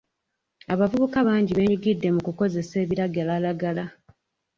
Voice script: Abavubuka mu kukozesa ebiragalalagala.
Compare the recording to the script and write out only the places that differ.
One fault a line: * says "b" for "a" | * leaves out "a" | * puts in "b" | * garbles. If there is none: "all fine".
* puts in "bangi beenyigidde"